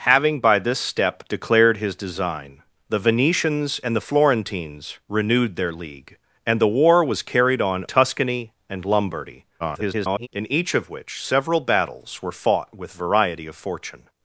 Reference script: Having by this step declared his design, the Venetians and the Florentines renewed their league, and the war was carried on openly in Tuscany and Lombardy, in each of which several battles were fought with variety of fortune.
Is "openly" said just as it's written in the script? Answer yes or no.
no